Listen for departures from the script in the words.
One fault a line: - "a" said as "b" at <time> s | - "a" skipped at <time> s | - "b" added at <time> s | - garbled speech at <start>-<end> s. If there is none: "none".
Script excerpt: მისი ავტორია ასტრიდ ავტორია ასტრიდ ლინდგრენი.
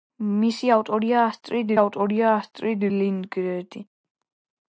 none